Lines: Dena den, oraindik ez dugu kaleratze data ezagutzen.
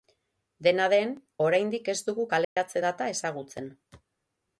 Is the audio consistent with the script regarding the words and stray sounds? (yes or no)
no